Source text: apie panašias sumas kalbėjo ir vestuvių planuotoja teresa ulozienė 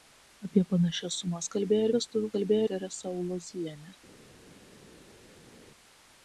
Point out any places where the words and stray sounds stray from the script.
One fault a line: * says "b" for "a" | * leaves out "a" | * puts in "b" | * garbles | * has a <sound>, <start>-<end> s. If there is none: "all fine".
* says "kalbėjo" for "planuotoja"